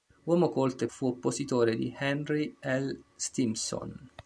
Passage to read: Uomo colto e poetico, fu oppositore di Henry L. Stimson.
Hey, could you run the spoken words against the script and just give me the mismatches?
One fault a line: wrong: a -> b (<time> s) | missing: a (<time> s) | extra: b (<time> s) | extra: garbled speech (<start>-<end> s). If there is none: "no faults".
missing: poetico (0.9 s)